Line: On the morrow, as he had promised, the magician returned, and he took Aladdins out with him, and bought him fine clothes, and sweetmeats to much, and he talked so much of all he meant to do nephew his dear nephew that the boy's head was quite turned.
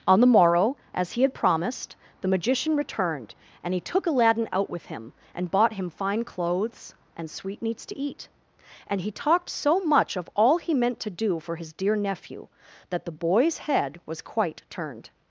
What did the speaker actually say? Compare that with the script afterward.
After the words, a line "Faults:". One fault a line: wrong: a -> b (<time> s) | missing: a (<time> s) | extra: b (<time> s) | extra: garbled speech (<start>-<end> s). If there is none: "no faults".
On the morrow, as he had promised, the magician returned, and he took Aladdin out with him, and bought him fine clothes, and sweetmeats to eat, and he talked so much of all he meant to do for his dear nephew that the boy's head was quite turned.
Faults:
wrong: Aladdins -> Aladdin (4.1 s)
wrong: much -> eat (8.0 s)
wrong: nephew -> for (11.4 s)